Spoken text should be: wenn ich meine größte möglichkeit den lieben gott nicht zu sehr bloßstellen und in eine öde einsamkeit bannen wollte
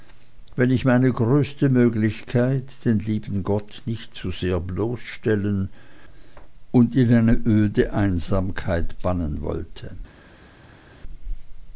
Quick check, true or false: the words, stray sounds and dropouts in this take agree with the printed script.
true